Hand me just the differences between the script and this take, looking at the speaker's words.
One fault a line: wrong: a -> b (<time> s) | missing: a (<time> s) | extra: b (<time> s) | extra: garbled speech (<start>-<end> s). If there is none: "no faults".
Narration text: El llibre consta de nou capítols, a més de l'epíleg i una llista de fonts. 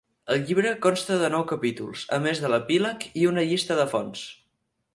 no faults